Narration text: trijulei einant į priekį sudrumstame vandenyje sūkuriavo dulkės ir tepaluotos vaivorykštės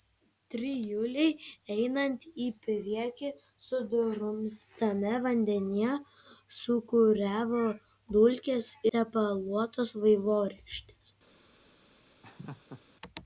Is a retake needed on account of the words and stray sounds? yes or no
yes